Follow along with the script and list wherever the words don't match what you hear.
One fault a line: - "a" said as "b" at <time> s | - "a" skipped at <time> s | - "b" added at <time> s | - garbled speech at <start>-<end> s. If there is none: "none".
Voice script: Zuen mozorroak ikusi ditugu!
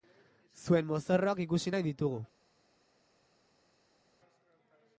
- "nahi" added at 1.8 s